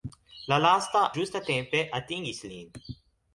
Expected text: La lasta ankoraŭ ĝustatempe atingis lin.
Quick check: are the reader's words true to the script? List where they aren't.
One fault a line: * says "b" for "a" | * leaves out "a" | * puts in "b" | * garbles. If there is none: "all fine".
* leaves out "ankoraŭ"